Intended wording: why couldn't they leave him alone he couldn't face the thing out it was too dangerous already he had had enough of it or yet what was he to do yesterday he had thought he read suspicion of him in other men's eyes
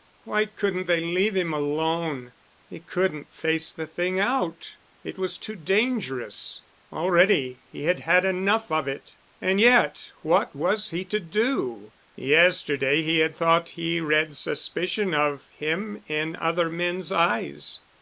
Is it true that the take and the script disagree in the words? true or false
true